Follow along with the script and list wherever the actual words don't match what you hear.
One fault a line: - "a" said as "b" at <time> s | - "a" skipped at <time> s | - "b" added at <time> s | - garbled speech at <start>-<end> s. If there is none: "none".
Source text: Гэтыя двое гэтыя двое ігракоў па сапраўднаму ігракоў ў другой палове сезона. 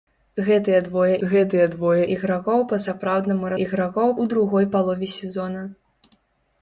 none